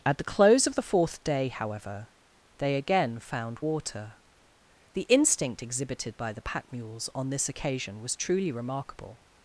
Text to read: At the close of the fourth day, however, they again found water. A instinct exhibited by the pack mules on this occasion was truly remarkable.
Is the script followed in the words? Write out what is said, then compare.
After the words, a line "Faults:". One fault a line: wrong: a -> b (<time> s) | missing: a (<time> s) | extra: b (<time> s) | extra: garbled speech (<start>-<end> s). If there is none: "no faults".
At the close of the fourth day, however, they again found water. The instinct exhibited by the pack mules on this occasion was truly remarkable.
Faults:
wrong: A -> The (4.9 s)